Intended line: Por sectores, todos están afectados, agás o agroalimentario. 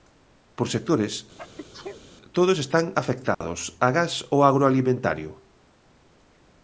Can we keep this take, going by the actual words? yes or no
yes